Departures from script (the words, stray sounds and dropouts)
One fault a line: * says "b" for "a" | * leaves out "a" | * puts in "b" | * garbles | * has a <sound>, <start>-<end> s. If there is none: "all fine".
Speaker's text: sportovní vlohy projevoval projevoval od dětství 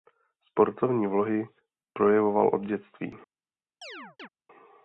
* leaves out "projevoval"
* has a chirp, 3.8-4.3 s